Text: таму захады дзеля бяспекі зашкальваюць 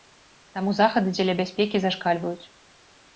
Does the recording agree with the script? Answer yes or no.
yes